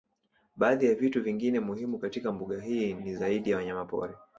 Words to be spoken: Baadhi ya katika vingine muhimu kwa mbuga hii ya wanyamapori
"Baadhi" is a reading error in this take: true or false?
false